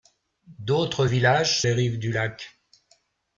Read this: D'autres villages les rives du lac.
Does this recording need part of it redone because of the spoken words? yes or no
no